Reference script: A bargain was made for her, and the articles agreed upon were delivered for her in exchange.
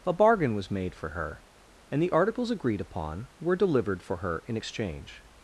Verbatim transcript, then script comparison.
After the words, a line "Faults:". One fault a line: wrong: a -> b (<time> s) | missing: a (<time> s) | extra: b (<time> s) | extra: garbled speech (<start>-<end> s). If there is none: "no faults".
A bargain was made for her, and the articles agreed upon were delivered for her in exchange.
Faults:
no faults